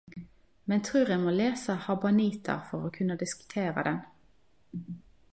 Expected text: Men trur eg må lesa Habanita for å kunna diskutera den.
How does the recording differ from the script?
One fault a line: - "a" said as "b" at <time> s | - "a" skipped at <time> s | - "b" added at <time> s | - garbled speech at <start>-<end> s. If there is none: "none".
none